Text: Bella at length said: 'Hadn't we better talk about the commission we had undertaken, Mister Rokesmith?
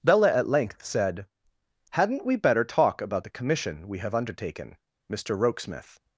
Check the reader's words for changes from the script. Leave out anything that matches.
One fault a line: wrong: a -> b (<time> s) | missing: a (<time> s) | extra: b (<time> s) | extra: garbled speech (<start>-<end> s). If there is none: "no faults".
wrong: had -> have (4.0 s)